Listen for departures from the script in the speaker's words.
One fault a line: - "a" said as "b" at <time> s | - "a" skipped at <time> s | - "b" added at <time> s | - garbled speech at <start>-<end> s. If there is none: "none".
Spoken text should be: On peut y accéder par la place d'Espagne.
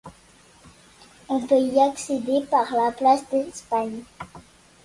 none